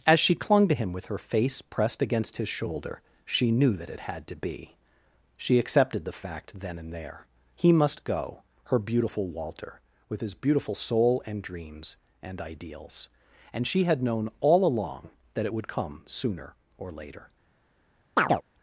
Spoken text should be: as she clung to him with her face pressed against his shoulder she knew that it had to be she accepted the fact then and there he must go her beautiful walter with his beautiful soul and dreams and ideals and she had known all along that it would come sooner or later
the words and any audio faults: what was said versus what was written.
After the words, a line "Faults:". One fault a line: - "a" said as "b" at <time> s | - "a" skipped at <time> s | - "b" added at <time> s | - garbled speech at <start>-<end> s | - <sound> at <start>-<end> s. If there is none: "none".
as she clung to him with her face pressed against his shoulder she knew that it had to be she accepted the fact then and there he must go her beautiful walter with his beautiful soul and dreams and ideals and she had known all along that it would come sooner or later
Faults:
- chirp at 18.2-18.4 s